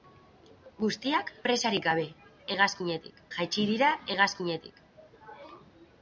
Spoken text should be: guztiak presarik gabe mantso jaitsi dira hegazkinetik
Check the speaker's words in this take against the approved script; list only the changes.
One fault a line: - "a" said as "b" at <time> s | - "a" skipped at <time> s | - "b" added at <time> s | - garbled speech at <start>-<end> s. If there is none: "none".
- "mantso" said as "hegazkinetik" at 2.6 s